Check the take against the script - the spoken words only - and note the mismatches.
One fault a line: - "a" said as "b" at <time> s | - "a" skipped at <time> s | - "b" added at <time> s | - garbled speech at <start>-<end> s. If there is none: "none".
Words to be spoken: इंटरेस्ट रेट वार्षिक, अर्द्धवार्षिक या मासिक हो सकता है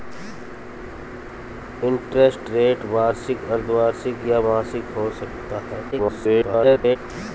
- garbled speech at 5.9-7.0 s